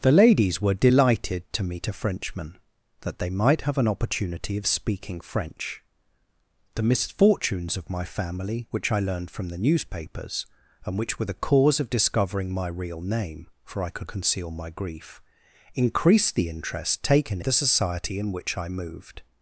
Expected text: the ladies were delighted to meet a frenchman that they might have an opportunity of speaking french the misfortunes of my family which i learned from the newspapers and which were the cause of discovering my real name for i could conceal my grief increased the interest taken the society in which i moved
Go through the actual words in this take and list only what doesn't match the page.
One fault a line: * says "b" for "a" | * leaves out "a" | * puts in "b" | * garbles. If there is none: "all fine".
all fine